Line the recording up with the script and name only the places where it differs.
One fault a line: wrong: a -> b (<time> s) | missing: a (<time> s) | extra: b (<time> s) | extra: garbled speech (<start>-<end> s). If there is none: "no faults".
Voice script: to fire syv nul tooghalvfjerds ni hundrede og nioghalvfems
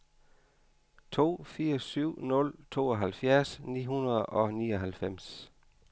no faults